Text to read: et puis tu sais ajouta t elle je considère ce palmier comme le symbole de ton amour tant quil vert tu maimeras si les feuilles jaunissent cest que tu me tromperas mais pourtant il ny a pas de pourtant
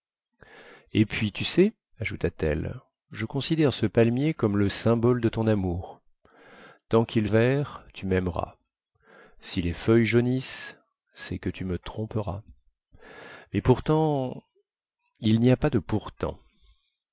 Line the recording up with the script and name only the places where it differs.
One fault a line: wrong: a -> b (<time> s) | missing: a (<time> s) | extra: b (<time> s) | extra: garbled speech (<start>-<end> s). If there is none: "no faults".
no faults